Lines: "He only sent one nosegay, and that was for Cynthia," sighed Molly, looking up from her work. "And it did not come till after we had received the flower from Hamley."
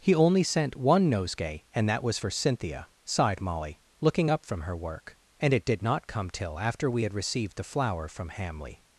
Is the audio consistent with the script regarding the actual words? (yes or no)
yes